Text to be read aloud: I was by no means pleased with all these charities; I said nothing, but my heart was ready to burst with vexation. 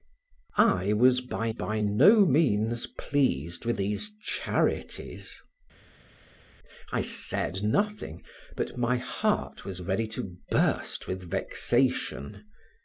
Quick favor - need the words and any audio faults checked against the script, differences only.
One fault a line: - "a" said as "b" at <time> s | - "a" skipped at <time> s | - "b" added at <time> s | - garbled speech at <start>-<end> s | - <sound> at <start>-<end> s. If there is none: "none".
- "by" added at 1.5 s
- "all" skipped at 3.8 s